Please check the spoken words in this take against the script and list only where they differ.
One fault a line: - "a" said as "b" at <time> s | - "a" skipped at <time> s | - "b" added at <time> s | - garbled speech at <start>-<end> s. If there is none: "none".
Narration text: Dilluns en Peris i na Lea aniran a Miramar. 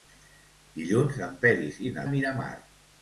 - "Lea aniran" skipped at 2.0 s